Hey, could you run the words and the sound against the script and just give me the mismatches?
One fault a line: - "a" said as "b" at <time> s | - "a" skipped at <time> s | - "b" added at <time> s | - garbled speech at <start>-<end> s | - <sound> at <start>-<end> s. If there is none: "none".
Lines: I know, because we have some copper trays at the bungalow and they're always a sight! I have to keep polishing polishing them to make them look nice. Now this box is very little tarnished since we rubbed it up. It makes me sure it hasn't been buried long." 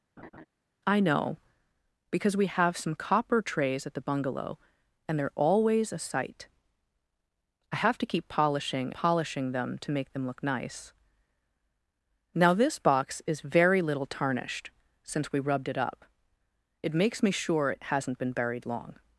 - laugh at 0.2-0.5 s